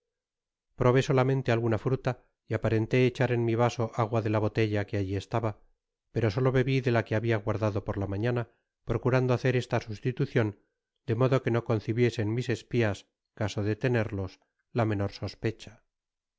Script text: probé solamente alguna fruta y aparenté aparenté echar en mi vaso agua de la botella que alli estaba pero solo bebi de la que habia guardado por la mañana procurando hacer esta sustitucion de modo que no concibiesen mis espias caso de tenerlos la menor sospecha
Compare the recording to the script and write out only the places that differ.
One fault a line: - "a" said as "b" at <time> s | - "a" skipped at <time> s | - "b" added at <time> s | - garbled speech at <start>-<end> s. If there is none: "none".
- "aparenté" skipped at 3.0 s